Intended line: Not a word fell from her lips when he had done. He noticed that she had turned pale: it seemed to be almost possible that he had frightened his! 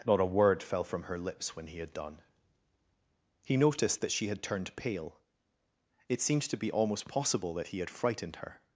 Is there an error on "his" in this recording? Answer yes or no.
yes